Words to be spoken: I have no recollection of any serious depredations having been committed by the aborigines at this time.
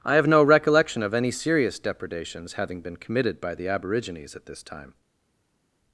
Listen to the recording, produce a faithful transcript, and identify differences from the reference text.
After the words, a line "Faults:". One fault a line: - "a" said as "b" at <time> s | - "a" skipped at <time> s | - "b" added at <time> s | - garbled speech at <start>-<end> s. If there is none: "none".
I have no recollection of any serious depredations having been committed by the aborigines at this time.
Faults:
none